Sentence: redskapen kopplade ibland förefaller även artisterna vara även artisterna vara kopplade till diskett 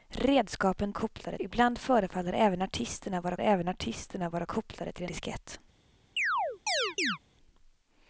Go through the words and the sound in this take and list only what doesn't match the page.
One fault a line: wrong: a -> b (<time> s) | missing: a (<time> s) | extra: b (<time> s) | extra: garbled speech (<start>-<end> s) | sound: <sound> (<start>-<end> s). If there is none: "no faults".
sound: chirp (6.2-7.2 s)